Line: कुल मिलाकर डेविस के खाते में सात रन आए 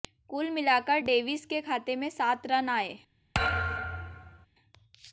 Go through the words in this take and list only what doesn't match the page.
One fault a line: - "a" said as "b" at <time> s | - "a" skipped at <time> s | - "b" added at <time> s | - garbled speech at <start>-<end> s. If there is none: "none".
none